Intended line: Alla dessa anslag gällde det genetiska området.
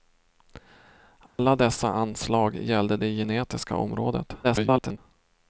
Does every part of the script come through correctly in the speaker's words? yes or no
no